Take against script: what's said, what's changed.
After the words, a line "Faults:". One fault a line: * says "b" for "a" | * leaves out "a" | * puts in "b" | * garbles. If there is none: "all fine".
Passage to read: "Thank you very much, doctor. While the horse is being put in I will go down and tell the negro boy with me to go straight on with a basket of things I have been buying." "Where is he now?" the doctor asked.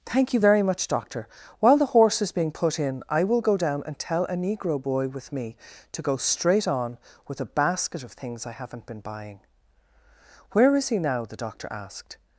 "Thank you very much, doctor. While the horse is being put in I will go down and tell a negro boy with me to go straight on with a basket of things I haven't been buying." "Where is he now?" the doctor asked.
Faults:
* says "a" for "the"
* says "haven't" for "have"